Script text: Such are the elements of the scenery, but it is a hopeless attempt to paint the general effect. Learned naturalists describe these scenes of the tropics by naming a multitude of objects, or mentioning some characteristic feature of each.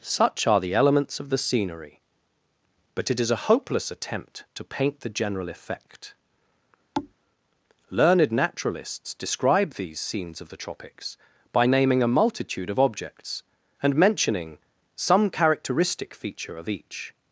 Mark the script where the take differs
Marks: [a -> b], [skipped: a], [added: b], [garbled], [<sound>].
Such are the elements of the scenery, but it is a hopeless attempt to paint the general effect. [thud] Learned naturalists describe these scenes of the tropics by naming a multitude of objects, [or -> and] mentioning some characteristic feature of each.